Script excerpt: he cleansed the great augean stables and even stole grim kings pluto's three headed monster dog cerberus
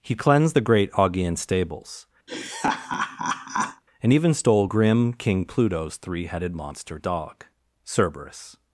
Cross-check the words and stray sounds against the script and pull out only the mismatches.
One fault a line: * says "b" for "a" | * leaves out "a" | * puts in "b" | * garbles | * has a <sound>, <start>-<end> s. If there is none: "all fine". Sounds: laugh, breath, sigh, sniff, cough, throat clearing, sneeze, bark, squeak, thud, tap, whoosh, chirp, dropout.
* has a laugh, 2.3-3.8 s
* says "king" for "kings"